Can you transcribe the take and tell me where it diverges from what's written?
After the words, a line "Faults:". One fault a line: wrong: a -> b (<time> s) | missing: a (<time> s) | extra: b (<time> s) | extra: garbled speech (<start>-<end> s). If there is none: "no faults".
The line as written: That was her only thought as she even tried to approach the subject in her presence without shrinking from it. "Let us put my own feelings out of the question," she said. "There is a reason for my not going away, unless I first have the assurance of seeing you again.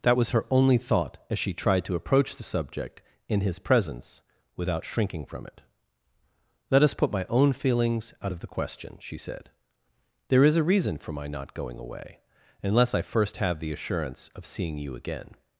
That was her only thought as she tried to approach the subject in his presence without shrinking from it. "Let us put my own feelings out of the question," she said. "There is a reason for my not going away, unless I first have the assurance of seeing you again.
Faults:
missing: even (1.5 s)
wrong: her -> his (3.4 s)